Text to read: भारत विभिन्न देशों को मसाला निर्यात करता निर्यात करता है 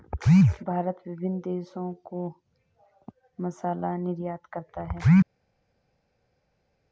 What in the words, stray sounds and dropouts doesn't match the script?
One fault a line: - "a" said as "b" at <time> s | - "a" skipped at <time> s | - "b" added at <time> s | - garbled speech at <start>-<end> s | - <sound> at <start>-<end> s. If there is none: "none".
- "निर्यात करता" skipped at 4.8 s